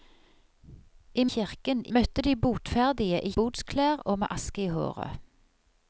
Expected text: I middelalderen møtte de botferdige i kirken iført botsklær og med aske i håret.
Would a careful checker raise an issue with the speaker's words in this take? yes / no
yes